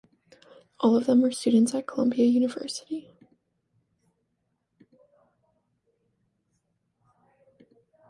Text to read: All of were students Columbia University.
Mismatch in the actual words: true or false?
true